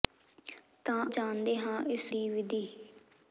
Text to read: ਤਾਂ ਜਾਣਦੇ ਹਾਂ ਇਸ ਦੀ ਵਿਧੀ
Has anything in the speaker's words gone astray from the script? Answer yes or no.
no